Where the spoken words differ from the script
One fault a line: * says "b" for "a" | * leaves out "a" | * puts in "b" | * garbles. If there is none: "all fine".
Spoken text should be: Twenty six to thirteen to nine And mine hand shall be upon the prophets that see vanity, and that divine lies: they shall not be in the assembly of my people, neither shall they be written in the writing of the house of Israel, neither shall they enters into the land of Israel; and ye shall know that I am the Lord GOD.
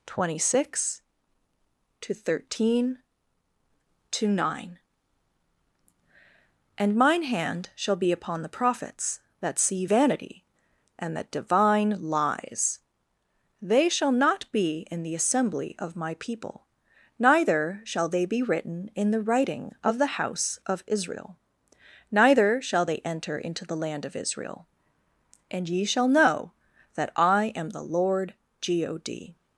* says "enter" for "enters"